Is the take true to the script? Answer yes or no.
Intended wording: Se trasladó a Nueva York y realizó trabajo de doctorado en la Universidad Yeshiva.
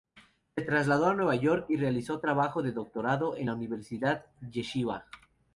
yes